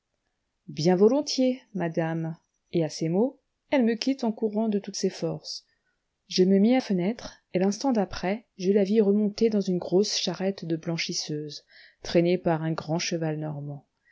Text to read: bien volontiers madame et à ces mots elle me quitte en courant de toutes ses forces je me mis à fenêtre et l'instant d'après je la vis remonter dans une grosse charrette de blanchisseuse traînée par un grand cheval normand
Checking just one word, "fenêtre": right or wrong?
right